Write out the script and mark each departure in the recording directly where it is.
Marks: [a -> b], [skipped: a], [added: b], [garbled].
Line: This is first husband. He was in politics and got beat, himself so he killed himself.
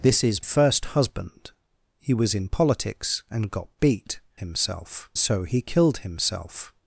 This is first husband. He was in politics and got beat, himself so he killed himself.